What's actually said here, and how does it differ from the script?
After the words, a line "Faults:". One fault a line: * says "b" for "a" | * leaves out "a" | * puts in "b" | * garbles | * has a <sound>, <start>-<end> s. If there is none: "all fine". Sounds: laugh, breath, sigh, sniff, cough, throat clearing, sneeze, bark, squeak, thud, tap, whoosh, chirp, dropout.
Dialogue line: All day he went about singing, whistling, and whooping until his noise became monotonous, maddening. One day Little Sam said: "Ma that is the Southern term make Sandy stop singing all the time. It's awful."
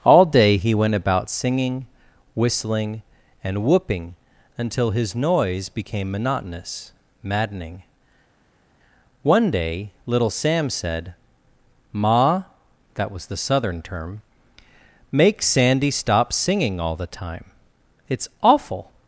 All day he went about singing, whistling, and whooping until his noise became monotonous, maddening. One day Little Sam said: "Ma that was the Southern term make Sandy stop singing all the time. It's awful."
Faults:
* says "was" for "is"